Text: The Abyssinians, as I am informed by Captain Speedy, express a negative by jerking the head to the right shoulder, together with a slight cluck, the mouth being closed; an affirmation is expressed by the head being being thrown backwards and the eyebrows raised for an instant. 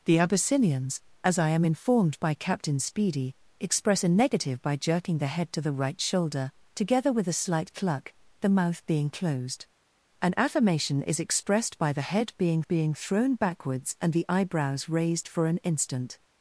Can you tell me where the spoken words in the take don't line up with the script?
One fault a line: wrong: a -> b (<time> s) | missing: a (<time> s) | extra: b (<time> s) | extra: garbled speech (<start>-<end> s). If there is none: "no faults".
no faults